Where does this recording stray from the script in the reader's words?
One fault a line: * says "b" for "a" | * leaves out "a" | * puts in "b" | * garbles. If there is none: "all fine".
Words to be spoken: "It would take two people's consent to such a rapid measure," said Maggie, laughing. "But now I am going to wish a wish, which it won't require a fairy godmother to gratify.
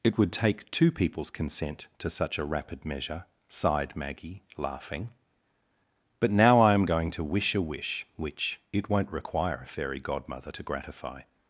* says "sighed" for "said"